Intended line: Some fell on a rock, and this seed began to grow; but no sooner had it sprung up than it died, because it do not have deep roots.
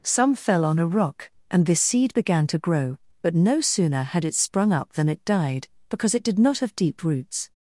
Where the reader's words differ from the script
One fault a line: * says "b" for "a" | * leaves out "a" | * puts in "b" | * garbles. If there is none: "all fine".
* says "did" for "do"